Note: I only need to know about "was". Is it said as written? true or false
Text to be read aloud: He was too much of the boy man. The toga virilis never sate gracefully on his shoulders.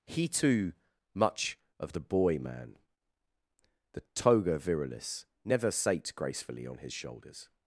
false